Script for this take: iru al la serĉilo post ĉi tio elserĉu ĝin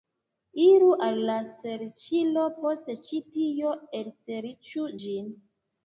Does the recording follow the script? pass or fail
pass